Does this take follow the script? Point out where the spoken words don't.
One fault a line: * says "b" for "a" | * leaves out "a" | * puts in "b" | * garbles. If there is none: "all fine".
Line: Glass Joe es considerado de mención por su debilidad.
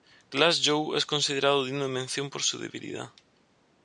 * puts in "digno"